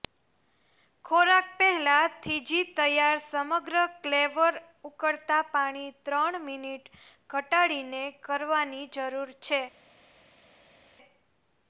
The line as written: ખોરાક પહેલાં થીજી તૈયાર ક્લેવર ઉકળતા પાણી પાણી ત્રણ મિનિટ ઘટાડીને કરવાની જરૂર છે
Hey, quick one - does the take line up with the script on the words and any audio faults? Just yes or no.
no